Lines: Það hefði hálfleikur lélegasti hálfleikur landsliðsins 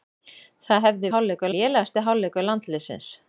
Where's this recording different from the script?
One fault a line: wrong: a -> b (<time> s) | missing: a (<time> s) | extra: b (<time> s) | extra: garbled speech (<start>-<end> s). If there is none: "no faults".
no faults